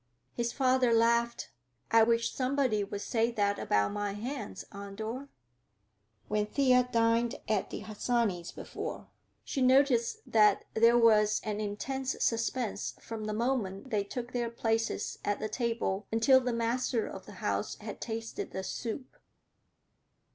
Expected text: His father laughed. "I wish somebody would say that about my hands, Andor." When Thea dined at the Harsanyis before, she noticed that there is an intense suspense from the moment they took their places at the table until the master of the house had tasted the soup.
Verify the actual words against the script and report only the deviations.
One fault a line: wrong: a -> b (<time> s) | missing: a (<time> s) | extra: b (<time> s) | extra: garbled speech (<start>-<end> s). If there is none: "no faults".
wrong: is -> was (11.0 s)